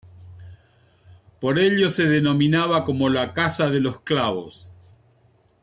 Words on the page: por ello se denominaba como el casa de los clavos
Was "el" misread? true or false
true